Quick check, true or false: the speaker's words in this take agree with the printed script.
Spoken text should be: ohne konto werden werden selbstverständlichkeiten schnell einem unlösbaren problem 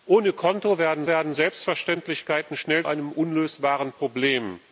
true